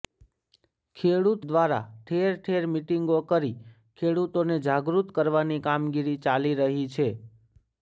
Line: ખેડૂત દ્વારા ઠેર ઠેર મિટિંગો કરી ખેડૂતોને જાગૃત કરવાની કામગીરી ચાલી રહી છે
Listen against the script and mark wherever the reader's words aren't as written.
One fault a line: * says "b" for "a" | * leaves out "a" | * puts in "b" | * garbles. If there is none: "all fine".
all fine